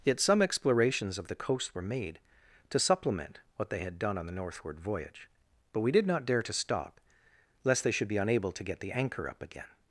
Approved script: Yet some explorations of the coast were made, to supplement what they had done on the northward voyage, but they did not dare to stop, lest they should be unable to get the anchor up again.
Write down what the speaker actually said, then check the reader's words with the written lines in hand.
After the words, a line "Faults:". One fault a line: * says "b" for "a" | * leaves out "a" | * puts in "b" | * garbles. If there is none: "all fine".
Yet some explorations of the coast were made, to supplement what they had done on the northward voyage, but we did not dare to stop, lest they should be unable to get the anchor up again.
Faults:
* says "we" for "they"